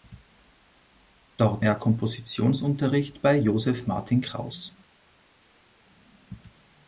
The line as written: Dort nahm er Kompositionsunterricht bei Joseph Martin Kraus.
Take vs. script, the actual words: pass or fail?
fail